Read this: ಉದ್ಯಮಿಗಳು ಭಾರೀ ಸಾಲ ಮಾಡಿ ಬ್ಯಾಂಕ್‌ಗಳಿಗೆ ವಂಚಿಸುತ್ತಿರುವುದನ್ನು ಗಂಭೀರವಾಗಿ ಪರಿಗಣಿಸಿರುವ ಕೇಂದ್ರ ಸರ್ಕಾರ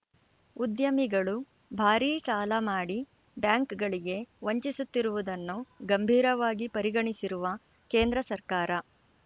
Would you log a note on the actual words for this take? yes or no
no